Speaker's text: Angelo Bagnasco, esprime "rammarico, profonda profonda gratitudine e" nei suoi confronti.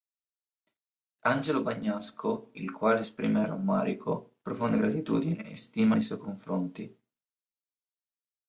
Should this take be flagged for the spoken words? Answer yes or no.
yes